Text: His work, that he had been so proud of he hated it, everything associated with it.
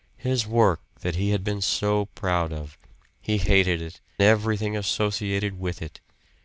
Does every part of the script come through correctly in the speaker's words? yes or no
yes